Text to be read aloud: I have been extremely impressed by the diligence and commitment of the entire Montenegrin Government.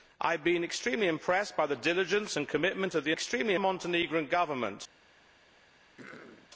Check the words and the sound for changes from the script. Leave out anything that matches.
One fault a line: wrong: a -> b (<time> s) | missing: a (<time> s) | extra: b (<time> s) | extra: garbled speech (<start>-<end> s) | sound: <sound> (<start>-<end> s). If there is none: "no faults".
wrong: entire -> extremely (3.1 s)
sound: throat clearing (6.0-6.5 s)